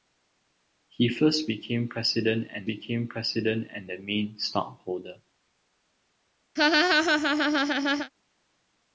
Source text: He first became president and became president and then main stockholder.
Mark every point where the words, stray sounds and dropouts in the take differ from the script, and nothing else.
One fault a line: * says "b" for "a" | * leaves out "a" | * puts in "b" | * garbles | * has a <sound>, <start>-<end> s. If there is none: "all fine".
* has a laugh, 6.6-8.1 s